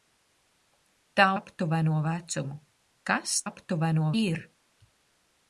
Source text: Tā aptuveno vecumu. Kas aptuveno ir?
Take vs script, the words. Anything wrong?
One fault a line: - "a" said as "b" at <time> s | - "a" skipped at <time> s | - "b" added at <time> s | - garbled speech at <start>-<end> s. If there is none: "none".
none